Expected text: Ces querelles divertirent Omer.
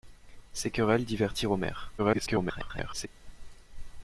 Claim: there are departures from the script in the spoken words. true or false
true